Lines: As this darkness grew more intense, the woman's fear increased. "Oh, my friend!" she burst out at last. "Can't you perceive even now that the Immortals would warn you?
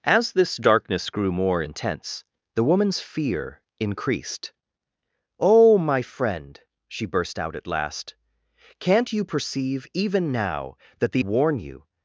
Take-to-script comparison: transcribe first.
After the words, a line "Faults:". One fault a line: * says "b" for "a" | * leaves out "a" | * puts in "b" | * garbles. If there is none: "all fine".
As this darkness grew more intense, the woman's fear increased. "Oh, my friend!" she burst out at last. "Can't you perceive even now that the Warn you?
Faults:
* leaves out "Immortals would"